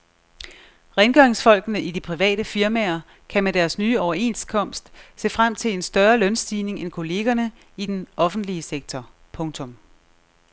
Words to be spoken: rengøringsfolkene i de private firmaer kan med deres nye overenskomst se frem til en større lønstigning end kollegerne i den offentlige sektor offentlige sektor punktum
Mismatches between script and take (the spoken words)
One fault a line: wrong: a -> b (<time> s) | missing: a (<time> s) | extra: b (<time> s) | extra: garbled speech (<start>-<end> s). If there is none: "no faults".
missing: offentlige sektor (9.1 s)